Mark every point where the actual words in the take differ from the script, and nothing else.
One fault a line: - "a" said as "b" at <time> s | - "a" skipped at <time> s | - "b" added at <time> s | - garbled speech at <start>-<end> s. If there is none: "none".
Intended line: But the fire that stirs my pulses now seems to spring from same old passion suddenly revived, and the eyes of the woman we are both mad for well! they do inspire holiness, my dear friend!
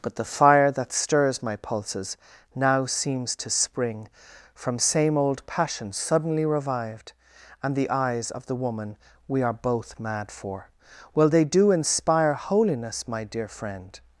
none